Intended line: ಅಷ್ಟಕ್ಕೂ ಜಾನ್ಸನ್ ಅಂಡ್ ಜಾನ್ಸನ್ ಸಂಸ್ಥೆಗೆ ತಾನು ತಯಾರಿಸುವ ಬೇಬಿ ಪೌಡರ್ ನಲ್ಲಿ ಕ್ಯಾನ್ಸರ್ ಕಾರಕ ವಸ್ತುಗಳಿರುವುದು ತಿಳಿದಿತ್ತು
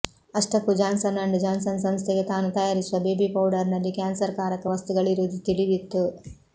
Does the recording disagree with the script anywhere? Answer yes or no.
no